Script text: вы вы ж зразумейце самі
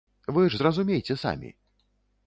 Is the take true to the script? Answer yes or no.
no